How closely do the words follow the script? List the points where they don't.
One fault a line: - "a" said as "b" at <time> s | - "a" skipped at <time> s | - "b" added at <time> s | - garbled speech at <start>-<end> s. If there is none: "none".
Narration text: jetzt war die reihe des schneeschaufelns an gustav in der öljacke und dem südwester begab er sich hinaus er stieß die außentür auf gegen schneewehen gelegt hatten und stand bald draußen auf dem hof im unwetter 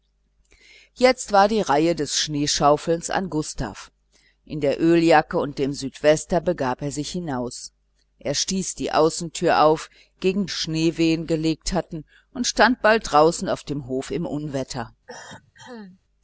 none